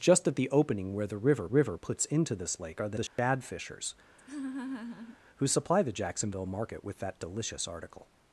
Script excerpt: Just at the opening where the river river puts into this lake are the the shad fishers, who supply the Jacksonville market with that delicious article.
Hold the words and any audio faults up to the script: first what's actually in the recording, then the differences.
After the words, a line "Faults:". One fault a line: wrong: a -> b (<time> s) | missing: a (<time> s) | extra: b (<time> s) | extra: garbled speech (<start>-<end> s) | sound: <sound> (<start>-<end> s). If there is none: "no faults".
Just at the opening where the river river puts into this lake are the the shad fishers, who supply the Jacksonville market with that delicious article.
Faults:
sound: dropout (3.1-3.2 s)
sound: laugh (4.2-5.2 s)